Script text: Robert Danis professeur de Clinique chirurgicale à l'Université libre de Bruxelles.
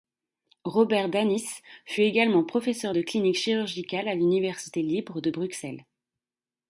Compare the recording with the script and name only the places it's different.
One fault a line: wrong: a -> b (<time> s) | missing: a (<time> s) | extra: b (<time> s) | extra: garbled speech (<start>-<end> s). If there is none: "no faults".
extra: fut également (1.9 s)